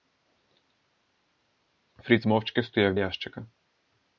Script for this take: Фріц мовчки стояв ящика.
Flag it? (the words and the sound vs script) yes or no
no